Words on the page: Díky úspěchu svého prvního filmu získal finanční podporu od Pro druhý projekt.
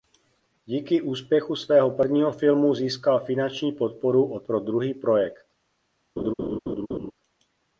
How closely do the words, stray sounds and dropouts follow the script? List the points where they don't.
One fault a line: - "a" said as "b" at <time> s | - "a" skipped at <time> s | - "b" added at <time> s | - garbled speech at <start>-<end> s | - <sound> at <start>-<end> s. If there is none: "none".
- laugh at 6.2-7.1 s